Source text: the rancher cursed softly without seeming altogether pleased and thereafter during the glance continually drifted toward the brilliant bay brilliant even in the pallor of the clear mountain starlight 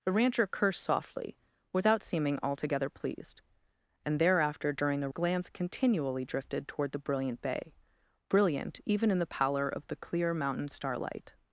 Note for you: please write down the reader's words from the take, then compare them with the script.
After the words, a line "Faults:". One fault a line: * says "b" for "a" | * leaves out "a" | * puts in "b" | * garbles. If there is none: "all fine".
the rancher cursed softly without seeming altogether pleased and thereafter during the glance continually drifted toward the brilliant bay brilliant even in the pallor of the clear mountain starlight
Faults:
all fine